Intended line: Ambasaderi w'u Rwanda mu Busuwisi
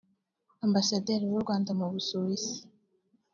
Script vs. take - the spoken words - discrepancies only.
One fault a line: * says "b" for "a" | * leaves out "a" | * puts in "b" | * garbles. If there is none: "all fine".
all fine